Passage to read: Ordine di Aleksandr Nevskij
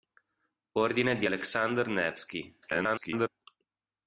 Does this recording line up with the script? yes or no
no